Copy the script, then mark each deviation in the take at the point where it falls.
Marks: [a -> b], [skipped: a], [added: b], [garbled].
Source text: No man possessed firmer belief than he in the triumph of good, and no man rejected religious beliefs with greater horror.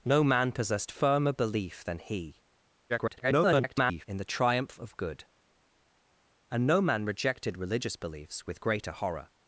No man possessed firmer belief than he [garbled] in the triumph of good, and no man rejected religious beliefs with greater horror.